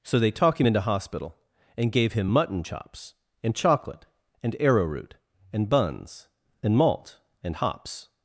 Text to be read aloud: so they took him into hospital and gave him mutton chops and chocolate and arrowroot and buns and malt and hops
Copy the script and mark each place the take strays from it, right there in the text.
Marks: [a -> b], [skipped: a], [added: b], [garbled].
so they [took -> talk] him into hospital and gave him mutton chops and chocolate and arrowroot and buns and malt and hops